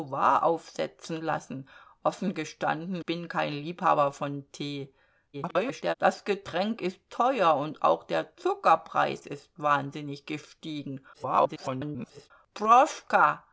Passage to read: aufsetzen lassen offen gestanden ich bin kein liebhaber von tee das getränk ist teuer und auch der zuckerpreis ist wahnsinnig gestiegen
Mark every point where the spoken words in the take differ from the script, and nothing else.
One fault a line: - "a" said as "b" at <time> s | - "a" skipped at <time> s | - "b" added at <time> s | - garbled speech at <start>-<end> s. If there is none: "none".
- "ich" skipped at 3.0 s
- garbled speech at 5.3-5.9 s
- garbled speech at 11.1-12.3 s